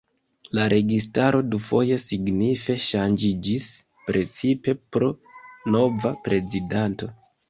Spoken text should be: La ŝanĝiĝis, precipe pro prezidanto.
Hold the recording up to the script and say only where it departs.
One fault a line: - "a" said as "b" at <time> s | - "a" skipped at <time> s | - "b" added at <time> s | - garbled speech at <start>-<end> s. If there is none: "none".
- "registaro dufoje signife" added at 0.7 s
- "nova" added at 5.8 s